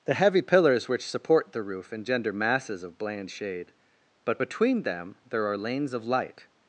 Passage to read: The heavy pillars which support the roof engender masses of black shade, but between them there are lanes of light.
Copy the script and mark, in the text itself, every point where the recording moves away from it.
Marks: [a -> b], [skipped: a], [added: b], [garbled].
The heavy pillars which support the roof engender masses of [black -> bland] shade, but between them there are lanes of light.